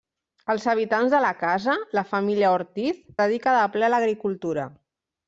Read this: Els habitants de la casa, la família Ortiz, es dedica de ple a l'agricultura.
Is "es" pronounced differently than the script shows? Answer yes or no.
yes